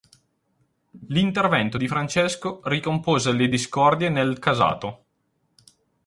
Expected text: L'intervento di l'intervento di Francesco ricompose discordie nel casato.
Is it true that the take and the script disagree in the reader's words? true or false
true